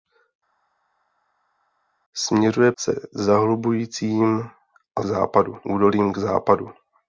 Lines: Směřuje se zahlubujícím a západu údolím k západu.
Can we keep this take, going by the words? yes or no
yes